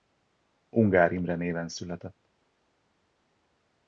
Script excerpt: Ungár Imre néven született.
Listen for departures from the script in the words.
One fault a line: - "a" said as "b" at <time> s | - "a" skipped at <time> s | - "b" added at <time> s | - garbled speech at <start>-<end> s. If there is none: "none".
none